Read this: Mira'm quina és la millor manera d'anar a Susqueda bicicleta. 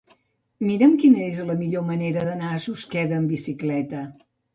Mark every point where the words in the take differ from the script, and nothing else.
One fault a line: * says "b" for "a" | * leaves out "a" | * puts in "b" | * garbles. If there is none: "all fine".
* puts in "amb"